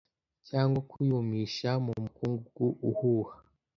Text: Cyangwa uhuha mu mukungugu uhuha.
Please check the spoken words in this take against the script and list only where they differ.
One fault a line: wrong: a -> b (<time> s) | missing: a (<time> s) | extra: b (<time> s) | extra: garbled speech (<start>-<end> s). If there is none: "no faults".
wrong: uhuha -> kuyumisha (0.9 s)